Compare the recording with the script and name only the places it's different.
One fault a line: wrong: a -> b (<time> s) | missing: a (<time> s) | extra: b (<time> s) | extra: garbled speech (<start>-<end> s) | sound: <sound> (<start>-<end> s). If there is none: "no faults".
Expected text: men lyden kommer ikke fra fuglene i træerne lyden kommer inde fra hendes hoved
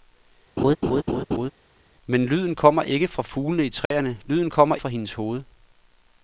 sound: laugh (0.6-1.5 s)
sound: dropout (3.9-3.9 s)
missing: inde (4.8 s)